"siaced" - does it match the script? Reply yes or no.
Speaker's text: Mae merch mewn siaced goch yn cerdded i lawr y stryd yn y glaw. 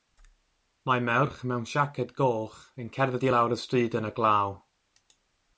yes